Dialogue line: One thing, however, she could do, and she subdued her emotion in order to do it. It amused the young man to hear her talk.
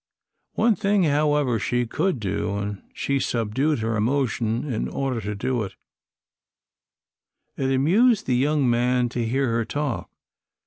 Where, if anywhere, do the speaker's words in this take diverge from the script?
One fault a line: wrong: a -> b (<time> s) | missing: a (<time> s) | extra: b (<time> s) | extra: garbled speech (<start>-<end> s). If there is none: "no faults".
no faults